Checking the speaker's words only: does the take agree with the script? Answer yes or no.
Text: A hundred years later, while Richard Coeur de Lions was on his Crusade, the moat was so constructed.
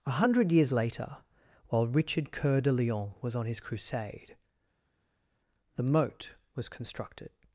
no